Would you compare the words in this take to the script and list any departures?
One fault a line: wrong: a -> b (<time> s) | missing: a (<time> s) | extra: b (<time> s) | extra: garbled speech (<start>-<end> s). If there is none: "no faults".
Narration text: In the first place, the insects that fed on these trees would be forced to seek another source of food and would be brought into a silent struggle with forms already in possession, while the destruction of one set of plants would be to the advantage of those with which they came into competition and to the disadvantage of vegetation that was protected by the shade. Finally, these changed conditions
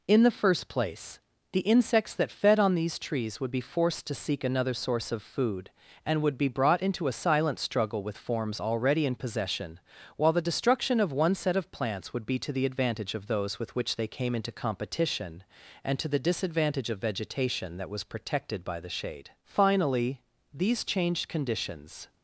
no faults